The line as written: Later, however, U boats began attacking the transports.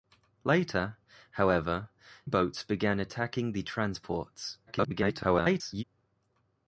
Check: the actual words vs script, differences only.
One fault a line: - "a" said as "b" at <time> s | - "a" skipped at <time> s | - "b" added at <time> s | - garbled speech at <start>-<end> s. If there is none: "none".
- "U" skipped at 1.9 s
- garbled speech at 4.7-5.8 s